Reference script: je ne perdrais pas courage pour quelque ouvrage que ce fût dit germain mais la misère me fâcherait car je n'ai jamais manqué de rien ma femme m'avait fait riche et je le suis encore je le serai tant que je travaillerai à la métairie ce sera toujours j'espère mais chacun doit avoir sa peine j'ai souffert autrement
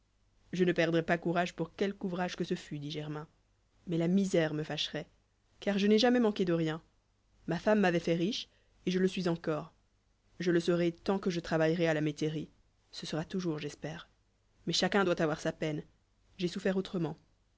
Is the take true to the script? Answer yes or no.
yes